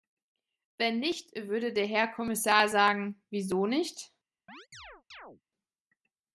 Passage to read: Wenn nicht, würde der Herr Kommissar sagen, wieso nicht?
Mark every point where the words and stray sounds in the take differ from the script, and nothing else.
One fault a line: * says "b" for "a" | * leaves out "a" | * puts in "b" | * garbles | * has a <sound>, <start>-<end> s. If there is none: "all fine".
* has a chirp, 4.5-5.4 s